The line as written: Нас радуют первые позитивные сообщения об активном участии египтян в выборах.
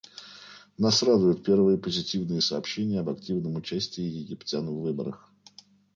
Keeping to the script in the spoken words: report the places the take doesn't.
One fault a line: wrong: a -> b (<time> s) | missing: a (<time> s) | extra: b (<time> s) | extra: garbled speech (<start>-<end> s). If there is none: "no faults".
no faults